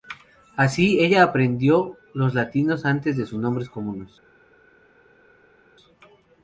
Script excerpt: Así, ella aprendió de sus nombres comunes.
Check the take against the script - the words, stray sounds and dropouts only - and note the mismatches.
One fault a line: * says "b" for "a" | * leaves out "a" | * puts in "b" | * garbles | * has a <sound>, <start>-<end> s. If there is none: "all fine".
* puts in "los latinos antes"